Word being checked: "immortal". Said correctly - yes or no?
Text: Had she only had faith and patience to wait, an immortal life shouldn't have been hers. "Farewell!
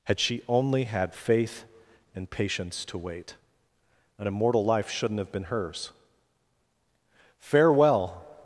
yes